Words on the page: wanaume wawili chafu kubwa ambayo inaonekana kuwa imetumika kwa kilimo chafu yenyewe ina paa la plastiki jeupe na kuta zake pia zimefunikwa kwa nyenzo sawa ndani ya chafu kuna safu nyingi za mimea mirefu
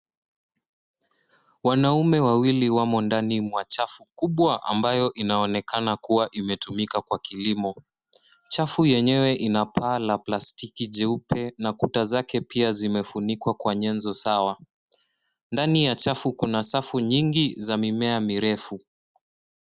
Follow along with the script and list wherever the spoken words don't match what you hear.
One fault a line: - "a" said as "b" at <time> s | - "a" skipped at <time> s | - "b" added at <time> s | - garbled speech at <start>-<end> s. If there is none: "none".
- "wamo ndani mwa" added at 2.7 s